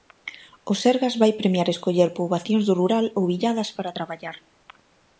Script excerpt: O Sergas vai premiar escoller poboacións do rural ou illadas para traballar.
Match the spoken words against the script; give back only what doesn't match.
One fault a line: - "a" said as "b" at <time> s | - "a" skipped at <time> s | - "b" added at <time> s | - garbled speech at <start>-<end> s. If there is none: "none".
none